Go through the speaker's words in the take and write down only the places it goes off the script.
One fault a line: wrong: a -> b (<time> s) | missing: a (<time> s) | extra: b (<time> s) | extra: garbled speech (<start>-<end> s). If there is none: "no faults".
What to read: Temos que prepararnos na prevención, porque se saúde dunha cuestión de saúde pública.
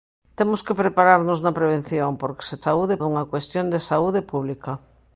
no faults